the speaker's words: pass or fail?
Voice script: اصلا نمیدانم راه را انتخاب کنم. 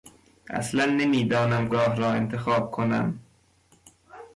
pass